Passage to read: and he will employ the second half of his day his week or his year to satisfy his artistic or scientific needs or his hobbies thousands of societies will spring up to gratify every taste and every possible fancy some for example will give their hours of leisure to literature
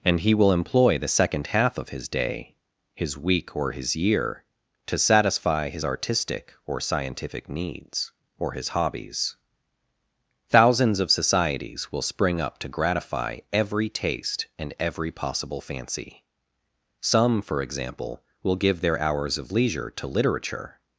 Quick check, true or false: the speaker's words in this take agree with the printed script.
true